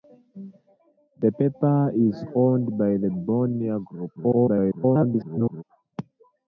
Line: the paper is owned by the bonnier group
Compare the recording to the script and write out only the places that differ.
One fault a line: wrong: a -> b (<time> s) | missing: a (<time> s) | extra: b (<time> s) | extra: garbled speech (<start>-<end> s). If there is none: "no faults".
extra: garbled speech (4.1-5.6 s)